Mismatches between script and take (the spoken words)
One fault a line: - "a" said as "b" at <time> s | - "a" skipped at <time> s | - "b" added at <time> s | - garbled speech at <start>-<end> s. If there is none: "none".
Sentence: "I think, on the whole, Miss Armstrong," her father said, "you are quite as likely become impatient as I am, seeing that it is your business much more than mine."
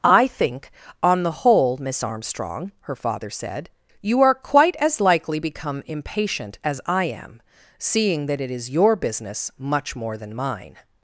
none